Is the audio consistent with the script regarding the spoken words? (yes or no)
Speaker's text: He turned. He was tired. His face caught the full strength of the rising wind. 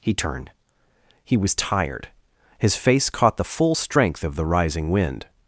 yes